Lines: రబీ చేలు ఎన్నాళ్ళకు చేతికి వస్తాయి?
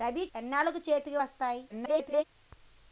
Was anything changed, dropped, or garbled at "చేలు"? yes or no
yes